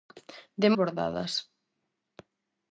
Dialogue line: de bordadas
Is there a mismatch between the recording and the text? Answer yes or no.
no